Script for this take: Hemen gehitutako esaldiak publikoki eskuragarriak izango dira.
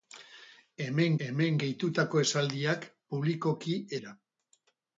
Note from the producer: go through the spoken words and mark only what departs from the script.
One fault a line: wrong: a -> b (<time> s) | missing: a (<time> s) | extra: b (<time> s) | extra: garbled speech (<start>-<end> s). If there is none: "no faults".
extra: hemen (1.3 s)
missing: eskuragarriak izango (3.8 s)